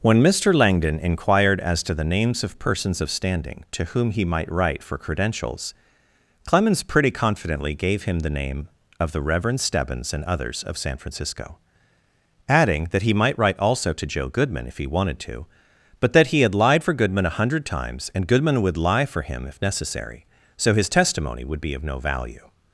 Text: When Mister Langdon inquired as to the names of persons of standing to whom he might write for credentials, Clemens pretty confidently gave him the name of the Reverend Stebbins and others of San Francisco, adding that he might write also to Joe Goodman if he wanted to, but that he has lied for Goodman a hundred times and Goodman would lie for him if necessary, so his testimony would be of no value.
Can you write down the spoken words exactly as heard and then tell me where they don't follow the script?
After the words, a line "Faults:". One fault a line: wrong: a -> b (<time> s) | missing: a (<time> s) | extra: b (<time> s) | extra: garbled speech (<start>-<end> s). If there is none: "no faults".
When Mister Langdon inquired as to the names of persons of standing to whom he might write for credentials, Clemens pretty confidently gave him the name of the Reverend Stebbins and others of San Francisco, adding that he might write also to Joe Goodman if he wanted to, but that he had lied for Goodman a hundred times and Goodman would lie for him if necessary, so his testimony would be of no value.
Faults:
wrong: has -> had (16.4 s)